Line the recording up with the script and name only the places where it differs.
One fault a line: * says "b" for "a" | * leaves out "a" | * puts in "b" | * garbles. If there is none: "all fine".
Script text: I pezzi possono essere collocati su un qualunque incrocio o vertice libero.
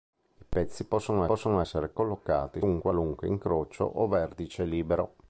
* puts in "possono"
* leaves out "su"